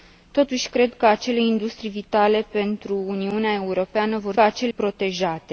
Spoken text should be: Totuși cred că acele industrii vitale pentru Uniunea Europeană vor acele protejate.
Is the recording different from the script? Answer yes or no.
no